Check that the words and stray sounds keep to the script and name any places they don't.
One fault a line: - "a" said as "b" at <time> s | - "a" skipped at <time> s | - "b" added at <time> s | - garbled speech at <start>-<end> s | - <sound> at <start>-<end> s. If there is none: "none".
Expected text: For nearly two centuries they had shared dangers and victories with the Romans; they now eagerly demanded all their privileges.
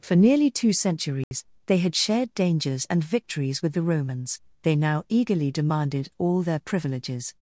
- dropout at 1.2-1.3 s